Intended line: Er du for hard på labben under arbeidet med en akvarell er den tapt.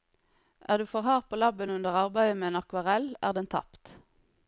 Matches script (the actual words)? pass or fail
pass